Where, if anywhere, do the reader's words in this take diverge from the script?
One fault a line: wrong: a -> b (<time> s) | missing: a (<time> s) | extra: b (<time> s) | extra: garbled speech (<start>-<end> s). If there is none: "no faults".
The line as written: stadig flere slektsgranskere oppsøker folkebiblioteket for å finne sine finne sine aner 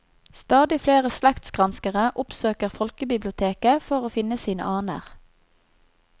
missing: finne sine (4.7 s)